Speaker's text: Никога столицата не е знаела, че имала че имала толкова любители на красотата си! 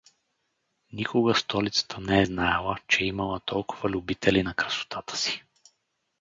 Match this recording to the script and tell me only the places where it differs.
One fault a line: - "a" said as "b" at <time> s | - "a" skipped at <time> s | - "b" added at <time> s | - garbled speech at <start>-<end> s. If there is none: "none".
- "че имала" skipped at 3.4 s